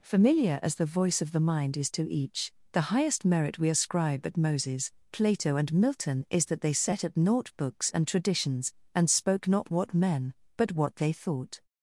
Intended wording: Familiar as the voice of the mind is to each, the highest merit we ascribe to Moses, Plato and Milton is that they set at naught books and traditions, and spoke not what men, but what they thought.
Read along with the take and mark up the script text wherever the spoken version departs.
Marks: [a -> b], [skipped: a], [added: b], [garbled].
Familiar as the voice of the mind is to each, the highest merit we ascribe [to -> at] Moses, Plato and Milton is that they set at naught books and traditions, and spoke not what men, but what they thought.